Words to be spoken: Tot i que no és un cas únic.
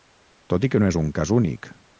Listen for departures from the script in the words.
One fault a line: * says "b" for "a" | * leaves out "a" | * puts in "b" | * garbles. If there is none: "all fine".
all fine